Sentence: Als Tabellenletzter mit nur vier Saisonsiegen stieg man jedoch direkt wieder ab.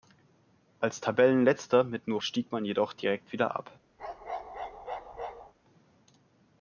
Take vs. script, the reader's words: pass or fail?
fail